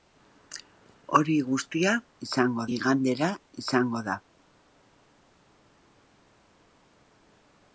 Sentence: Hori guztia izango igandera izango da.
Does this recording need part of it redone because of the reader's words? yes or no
no